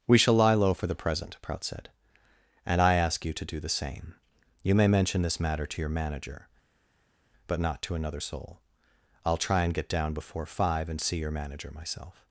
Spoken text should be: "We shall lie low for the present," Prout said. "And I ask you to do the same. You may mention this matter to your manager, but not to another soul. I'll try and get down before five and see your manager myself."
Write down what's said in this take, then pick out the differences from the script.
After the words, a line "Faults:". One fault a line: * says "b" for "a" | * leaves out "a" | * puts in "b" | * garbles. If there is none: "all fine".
"We shall lie low for the present," Prout said. "And I ask you to do the same. You may mention this matter to your manager, but not to another soul. I'll try and get down before five and see your manager myself."
Faults:
all fine